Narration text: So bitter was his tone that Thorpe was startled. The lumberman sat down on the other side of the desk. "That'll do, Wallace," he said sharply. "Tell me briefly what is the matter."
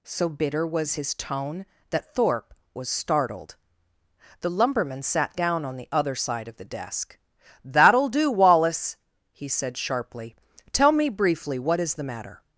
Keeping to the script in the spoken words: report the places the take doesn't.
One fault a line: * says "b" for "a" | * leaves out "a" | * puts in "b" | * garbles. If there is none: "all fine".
all fine